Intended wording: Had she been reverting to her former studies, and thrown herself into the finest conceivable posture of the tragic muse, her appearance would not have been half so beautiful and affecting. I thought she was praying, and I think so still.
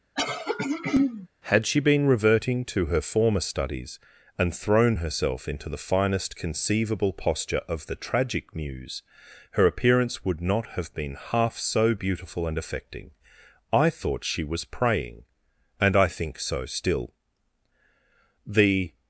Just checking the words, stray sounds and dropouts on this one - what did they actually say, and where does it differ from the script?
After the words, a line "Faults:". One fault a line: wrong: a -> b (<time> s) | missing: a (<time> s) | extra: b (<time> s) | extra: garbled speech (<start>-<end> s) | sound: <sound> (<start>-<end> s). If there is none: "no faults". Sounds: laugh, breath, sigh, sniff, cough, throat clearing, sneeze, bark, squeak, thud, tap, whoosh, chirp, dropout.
Had she been reverting to her former studies, and thrown herself into the finest conceivable posture of the tragic muse, her appearance would not have been half so beautiful and affecting. I thought she was praying, and I think so still. The
Faults:
sound: throat clearing (0.2-1.3 s)
extra: The (18.4 s)